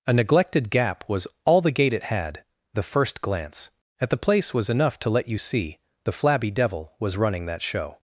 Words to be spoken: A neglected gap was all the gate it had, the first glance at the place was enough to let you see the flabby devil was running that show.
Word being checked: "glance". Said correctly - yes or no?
yes